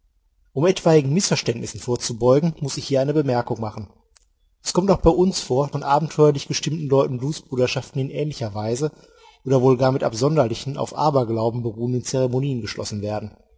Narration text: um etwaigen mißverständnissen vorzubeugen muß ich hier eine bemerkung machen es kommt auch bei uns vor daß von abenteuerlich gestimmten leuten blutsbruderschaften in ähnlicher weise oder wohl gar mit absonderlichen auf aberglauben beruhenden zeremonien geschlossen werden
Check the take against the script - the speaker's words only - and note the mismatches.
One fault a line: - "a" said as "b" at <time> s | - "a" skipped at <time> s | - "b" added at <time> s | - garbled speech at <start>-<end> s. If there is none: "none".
- "daß" skipped at 5.7 s